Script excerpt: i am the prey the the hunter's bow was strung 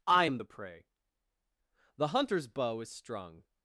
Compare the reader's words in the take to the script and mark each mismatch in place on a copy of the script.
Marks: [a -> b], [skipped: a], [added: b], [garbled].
i am the prey the [skipped: the] hunter's bow [was -> is] strung